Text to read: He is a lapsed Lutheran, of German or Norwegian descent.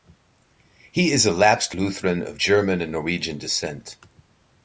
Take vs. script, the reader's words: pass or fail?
fail